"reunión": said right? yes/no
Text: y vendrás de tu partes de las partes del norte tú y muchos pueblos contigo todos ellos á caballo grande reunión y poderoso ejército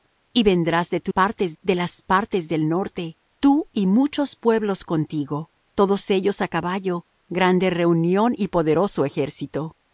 yes